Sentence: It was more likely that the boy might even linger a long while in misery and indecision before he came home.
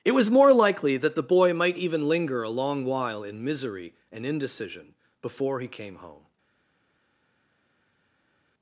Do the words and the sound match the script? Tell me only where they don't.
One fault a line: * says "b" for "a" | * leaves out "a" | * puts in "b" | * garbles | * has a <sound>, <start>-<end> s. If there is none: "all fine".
all fine